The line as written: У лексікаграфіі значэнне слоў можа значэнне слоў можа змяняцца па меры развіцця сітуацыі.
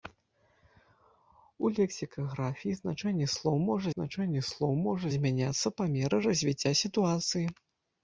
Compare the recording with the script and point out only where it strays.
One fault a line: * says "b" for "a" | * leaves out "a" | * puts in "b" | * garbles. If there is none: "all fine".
all fine